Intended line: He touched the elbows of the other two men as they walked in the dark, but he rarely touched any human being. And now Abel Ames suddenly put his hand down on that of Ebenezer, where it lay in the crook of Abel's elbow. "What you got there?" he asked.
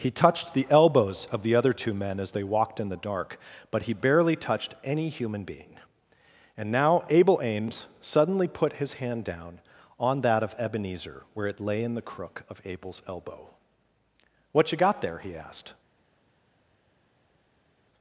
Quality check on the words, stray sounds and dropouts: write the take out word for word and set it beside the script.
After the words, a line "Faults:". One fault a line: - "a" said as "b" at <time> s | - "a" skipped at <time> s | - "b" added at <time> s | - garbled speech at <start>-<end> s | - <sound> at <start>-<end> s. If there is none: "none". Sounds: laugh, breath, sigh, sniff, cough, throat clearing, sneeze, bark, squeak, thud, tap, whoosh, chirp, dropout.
He touched the elbows of the other two men as they walked in the dark, but he barely touched any human being. And now Abel Ames suddenly put his hand down on that of Ebenezer, where it lay in the crook of Abel's elbow. "What you got there?" he asked.
Faults:
- "rarely" said as "barely" at 3.9 s